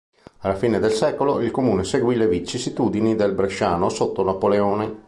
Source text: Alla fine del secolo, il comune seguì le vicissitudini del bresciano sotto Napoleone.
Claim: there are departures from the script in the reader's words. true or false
false